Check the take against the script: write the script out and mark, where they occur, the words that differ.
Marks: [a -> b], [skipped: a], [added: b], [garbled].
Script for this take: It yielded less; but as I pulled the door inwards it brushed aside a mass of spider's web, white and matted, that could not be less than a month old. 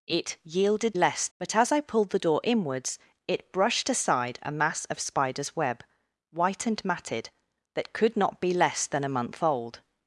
It yielded less; but as I pulled the door inwards it brushed aside a mass of spider's web, white and matted, that could not be less than a month old.